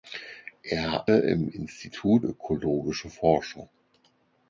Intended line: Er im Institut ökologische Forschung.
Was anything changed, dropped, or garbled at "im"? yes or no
no